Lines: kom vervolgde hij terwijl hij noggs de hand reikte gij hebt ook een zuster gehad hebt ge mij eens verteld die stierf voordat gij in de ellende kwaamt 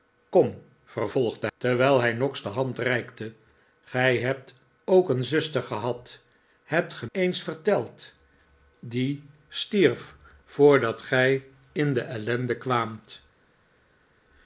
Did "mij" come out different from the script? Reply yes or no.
yes